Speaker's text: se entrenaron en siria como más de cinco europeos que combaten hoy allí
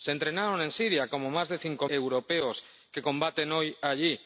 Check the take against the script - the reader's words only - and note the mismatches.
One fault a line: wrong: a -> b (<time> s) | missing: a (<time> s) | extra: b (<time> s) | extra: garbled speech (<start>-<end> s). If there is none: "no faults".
no faults